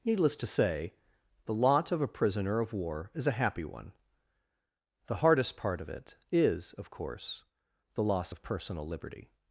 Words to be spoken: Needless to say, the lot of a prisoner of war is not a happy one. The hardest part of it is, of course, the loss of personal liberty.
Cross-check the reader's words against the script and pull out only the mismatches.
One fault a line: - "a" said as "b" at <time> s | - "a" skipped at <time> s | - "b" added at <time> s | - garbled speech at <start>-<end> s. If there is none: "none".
- "not" skipped at 3.3 s